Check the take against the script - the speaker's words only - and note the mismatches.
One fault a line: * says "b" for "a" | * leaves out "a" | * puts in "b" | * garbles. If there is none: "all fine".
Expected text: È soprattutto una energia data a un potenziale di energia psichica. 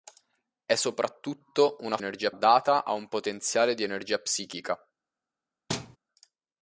all fine